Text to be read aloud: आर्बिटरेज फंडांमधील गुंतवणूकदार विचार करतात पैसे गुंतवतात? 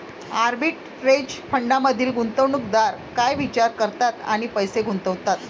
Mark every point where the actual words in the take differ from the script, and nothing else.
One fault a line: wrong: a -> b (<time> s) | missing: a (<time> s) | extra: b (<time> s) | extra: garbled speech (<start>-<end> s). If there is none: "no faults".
extra: काय (3.1 s)
extra: आणि (4.2 s)